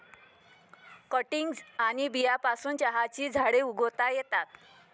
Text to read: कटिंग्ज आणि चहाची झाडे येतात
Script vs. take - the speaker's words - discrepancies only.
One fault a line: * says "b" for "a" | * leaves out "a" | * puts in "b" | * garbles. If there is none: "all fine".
* puts in "बियांपासून"
* puts in "उगवता"